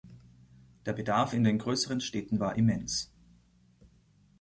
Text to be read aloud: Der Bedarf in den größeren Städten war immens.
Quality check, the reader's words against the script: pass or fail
pass